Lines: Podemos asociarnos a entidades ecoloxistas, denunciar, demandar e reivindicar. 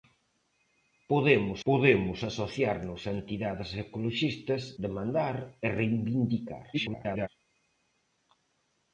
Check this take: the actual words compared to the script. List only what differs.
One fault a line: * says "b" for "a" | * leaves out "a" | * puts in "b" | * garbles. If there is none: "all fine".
* puts in "podemos"
* leaves out "denunciar"
* garbles